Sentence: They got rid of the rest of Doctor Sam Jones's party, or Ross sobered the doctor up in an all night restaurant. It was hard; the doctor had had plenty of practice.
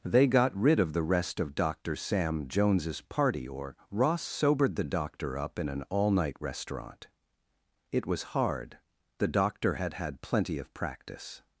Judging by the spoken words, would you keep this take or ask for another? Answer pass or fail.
pass